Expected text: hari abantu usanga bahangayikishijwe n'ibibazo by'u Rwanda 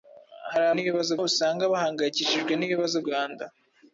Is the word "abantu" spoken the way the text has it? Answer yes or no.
no